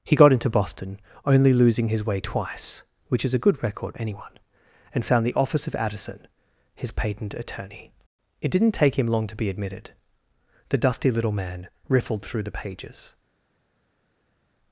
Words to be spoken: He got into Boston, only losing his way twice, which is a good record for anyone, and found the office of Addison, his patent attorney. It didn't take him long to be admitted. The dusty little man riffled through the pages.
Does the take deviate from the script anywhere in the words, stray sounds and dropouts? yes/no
yes